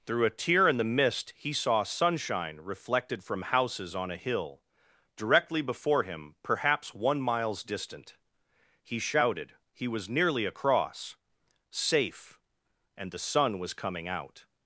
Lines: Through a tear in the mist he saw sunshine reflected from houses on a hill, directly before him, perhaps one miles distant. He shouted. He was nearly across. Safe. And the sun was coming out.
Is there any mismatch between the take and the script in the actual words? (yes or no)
no